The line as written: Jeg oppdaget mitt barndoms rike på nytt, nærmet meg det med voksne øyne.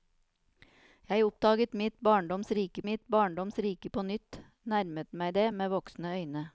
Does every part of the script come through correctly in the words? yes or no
no